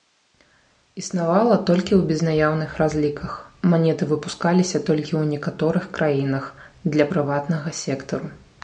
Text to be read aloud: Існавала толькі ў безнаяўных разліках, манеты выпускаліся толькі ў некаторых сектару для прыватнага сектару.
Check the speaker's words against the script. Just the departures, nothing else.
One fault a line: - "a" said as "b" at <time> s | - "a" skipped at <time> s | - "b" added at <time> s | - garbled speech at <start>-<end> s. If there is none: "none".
- "сектару" said as "краінах" at 6.0 s